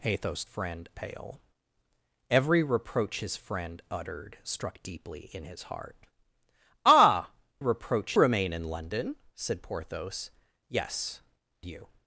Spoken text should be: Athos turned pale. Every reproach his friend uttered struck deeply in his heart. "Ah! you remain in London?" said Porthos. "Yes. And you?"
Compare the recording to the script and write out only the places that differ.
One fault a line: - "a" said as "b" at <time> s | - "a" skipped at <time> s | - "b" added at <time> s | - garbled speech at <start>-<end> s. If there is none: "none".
- "turned" said as "friend" at 0.4 s
- "you" said as "reproach" at 7.6 s
- "And" skipped at 11.2 s